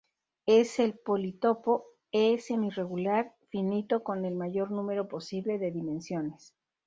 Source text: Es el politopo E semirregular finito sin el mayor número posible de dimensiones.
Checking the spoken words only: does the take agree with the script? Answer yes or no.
no